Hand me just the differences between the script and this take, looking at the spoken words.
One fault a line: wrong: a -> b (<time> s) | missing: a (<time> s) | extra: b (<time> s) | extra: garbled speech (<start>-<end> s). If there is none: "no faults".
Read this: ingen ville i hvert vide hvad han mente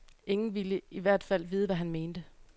extra: fald (1.2 s)